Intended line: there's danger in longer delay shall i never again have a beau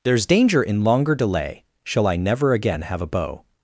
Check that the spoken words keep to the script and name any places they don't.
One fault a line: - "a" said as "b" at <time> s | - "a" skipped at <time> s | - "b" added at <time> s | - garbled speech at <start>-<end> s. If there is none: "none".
none